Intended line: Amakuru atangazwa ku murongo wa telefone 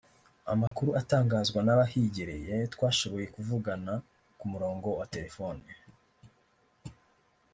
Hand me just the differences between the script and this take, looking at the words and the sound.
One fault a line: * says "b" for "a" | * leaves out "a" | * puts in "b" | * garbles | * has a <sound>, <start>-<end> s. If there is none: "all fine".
* has a dropout, 0.7-0.7 s
* puts in "n'abahigereye twashoboye kuvugana"